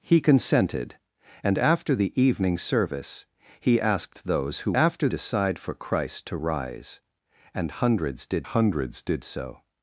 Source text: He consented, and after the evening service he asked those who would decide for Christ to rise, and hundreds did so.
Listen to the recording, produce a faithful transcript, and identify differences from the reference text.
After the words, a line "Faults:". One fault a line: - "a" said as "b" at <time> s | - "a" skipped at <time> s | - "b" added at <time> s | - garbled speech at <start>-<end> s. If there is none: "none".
He consented, and after the evening service he asked those who after decide for Christ to rise, and hundreds did hundreds did so.
Faults:
- "would" said as "after" at 4.7 s
- "hundreds did" added at 8.4 s